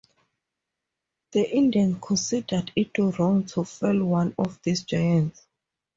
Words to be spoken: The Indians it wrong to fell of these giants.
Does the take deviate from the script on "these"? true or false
false